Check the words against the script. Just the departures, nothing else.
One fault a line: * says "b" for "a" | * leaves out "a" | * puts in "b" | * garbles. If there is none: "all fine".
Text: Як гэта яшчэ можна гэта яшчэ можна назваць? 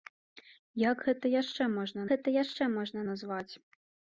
all fine